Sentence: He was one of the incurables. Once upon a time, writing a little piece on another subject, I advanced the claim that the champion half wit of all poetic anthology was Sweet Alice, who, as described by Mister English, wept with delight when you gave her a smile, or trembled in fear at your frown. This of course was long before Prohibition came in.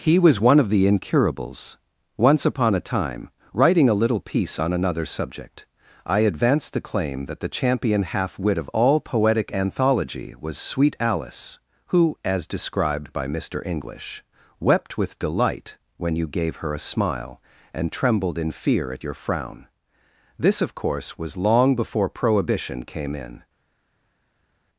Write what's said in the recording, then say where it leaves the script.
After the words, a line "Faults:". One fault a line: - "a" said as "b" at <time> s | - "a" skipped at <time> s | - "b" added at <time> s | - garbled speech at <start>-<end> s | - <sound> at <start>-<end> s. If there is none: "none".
He was one of the incurables. Once upon a time, writing a little piece on another subject, I advanced the claim that the champion half wit of all poetic anthology was Sweet Alice, who, as described by Mister English, wept with delight when you gave her a smile, and trembled in fear at your frown. This of course was long before Prohibition came in.
Faults:
- "or" said as "and" at 17.7 s